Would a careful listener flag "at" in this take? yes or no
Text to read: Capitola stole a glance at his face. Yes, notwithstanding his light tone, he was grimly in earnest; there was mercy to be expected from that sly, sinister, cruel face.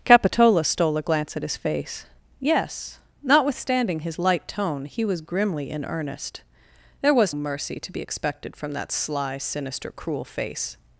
no